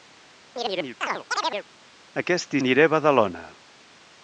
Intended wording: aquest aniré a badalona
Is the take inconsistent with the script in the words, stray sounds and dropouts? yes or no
yes